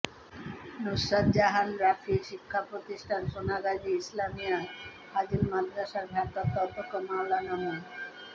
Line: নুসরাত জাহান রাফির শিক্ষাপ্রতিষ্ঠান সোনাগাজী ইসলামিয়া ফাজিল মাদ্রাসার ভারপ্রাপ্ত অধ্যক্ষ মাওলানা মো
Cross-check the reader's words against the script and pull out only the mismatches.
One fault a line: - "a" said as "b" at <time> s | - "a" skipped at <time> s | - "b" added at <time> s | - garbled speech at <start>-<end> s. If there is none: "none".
none